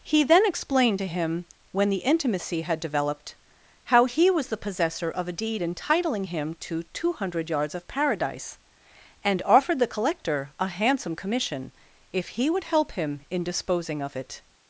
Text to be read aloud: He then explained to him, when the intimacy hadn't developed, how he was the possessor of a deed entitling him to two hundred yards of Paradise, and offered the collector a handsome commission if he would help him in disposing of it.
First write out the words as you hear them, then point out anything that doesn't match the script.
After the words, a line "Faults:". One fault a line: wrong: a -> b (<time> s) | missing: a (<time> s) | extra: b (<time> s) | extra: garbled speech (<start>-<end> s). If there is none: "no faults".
He then explained to him, when the intimacy had developed, how he was the possessor of a deed entitling him to two hundred yards of Paradise, and offered the collector a handsome commission if he would help him in disposing of it.
Faults:
wrong: hadn't -> had (2.6 s)